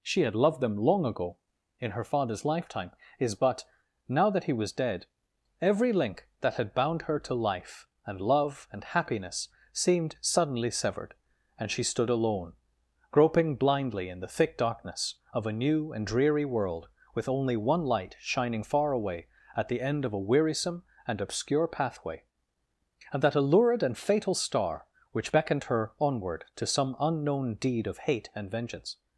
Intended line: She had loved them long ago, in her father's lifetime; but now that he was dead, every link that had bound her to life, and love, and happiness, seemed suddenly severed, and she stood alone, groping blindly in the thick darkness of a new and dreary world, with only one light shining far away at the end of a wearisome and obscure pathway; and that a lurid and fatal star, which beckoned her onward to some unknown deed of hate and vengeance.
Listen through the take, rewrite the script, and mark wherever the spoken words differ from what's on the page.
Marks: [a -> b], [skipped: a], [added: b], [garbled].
She had loved them long ago, in her father's lifetime; [added: is] but now that he was dead, every link that had bound her to life, and love, and happiness, seemed suddenly severed, and she stood alone, groping blindly in the thick darkness of a new and dreary world, with only one light shining far away at the end of a wearisome and obscure pathway; and that a lurid and fatal star, which beckoned her onward to some unknown deed of hate and vengeance.